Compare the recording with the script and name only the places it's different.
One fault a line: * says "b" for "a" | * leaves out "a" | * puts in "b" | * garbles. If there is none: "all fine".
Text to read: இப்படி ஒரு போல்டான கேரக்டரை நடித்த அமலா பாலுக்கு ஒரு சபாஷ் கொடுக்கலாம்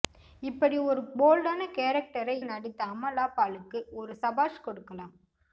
all fine